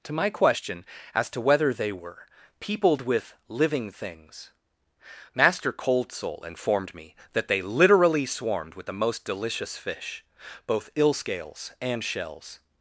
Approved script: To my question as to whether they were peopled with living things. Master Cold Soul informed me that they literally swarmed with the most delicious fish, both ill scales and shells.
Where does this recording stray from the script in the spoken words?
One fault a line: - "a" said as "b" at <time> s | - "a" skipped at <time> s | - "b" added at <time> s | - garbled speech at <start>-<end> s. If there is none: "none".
none